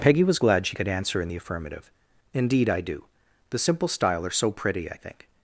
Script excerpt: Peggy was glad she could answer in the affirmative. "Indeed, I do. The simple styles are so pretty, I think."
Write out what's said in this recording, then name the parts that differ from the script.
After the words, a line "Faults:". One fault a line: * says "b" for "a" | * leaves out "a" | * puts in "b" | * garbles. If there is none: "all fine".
Peggy was glad she could answer in the affirmative. "Indeed, I do. The simple style are so pretty, I think."
Faults:
* says "style" for "styles"